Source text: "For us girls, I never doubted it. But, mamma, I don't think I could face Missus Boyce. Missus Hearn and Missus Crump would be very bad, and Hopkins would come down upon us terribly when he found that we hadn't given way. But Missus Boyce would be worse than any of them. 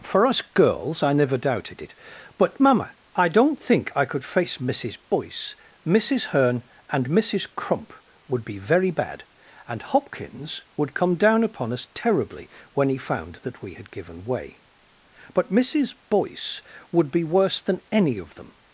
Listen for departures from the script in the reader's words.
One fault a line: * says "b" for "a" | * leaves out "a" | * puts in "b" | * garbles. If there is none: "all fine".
* says "had" for "hadn't"